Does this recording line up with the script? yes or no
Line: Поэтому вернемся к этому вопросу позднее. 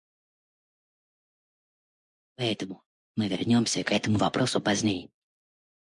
no